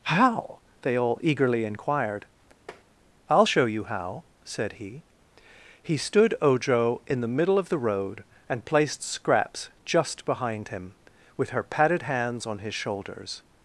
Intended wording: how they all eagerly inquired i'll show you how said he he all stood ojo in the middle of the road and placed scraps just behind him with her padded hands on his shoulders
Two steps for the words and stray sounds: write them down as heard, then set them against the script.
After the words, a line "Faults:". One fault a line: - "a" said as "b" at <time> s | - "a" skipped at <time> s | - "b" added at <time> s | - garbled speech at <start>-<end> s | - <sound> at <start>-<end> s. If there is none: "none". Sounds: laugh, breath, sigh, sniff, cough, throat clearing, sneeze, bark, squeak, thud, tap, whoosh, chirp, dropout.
how they all eagerly inquired i'll show you how said he he stood ojo in the middle of the road and placed scraps just behind him with her padded hands on his shoulders
Faults:
- tap at 2.7-2.8 s
- "all" skipped at 6.0 s